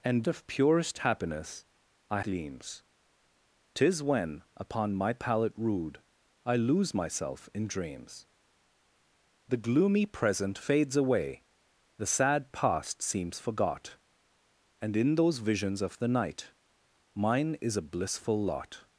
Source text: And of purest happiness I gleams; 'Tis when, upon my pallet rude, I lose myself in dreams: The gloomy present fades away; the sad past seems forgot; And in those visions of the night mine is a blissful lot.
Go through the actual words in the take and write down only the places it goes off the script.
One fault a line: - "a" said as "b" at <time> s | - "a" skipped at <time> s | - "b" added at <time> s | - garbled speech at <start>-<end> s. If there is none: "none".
none